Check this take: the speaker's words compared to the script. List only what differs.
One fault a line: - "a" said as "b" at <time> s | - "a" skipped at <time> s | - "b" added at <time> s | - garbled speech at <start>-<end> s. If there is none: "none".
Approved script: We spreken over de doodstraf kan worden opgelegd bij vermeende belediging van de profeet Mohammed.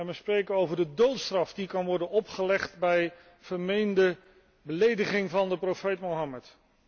- "die" added at 1.5 s